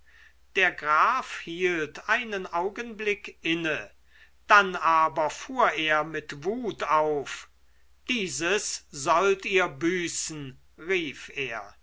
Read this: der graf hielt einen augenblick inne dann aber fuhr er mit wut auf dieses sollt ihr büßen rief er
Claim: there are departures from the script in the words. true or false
false